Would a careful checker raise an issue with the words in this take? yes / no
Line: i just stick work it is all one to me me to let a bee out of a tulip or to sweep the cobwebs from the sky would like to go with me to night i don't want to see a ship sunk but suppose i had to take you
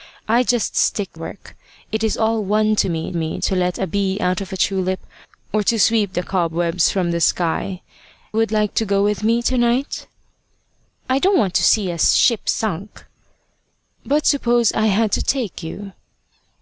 no